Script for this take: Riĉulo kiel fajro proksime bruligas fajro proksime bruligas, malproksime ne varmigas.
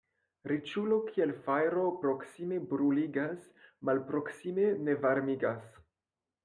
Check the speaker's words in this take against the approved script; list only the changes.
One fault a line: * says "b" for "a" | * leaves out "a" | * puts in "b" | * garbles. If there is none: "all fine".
* leaves out "fajro proksime bruligas"